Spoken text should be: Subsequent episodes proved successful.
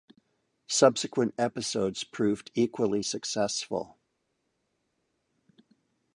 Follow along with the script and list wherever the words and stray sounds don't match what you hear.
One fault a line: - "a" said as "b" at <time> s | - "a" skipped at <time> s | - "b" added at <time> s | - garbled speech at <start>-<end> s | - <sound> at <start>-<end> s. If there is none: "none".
- "equally" added at 2.5 s